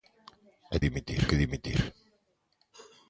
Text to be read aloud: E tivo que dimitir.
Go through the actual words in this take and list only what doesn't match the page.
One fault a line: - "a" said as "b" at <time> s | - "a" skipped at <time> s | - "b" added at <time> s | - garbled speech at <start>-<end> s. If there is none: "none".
- "tivo" said as "dimitir" at 0.9 s